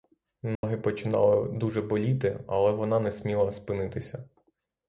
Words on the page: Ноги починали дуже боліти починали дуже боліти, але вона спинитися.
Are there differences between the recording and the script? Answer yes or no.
yes